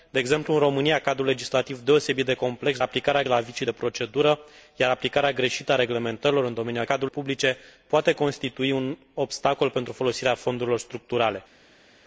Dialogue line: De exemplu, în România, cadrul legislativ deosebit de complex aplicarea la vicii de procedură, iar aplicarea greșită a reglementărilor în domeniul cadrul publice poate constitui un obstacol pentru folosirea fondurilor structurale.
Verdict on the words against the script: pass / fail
pass